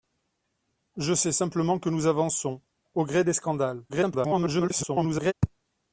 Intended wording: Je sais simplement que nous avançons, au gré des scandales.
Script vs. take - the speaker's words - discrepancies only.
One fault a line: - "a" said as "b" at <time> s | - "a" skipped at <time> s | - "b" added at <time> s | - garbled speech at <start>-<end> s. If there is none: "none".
- garbled speech at 3.9-5.3 s